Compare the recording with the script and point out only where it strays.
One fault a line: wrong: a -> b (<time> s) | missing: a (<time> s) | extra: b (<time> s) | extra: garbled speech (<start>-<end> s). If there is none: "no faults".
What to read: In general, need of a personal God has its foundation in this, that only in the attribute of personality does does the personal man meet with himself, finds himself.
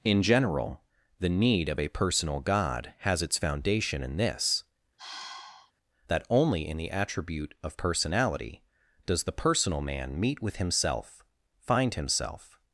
extra: the (1.2 s)
missing: does (9.2 s)
wrong: finds -> find (11.6 s)